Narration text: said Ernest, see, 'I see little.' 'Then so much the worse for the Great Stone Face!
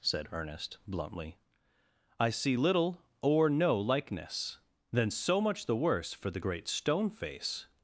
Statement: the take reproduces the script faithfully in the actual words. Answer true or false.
false